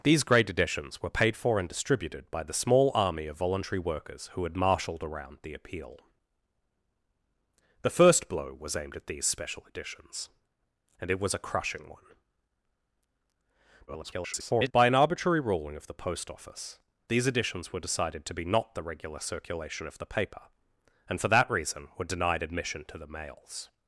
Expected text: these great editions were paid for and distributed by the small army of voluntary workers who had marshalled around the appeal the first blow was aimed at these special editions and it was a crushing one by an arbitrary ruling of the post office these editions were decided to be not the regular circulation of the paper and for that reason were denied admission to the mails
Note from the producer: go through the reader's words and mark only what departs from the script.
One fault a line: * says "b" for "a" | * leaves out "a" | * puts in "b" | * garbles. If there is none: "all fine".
* garbles